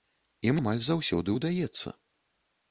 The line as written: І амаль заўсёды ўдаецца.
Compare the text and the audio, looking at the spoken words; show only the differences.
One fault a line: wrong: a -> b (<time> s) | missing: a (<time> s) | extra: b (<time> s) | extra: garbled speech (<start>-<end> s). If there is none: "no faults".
no faults